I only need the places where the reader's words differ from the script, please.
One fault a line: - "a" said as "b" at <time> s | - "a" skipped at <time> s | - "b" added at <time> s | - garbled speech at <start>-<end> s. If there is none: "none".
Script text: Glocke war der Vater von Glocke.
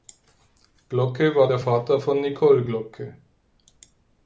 - "Nicole" added at 2.2 s